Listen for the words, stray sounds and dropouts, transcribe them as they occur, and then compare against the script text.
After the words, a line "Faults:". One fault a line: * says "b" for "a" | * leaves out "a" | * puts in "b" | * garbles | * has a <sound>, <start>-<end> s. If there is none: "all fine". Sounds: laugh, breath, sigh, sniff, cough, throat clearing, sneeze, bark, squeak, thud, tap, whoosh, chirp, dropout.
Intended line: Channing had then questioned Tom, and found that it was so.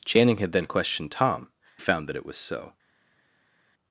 Channing had then questioned Tom, found that it was so.
Faults:
* leaves out "and"